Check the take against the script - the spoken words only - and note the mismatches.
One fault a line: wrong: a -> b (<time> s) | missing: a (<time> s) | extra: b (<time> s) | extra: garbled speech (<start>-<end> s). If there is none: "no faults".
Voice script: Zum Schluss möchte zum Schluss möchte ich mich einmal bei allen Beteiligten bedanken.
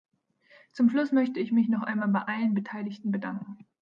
missing: zum Schluss möchte (1.4 s)
extra: noch (1.7 s)